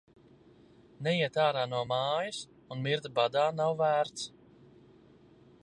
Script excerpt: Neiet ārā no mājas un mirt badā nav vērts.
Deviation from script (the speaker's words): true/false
false